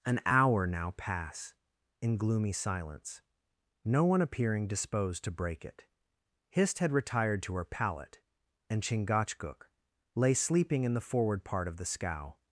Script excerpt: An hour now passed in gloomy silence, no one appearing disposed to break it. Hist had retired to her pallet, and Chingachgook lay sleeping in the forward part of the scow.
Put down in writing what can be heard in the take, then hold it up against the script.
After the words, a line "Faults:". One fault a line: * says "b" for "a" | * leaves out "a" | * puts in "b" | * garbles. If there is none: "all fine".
An hour now pass in gloomy silence, no one appearing disposed to break it. Hist had retired to her pallet, and Chingachgook lay sleeping in the forward part of the scow.
Faults:
* says "pass" for "passed"